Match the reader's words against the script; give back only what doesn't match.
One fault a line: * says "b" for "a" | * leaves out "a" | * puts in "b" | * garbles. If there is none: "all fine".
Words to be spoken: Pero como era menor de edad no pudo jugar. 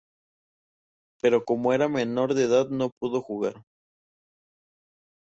all fine